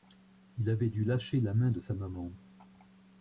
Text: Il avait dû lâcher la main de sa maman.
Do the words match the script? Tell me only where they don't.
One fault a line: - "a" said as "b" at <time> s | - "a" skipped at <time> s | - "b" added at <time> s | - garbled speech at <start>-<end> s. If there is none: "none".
none